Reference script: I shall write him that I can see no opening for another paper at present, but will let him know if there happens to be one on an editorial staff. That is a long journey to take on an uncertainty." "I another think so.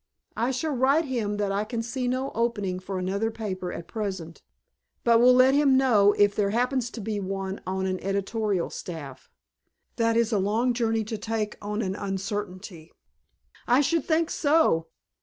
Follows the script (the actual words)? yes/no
no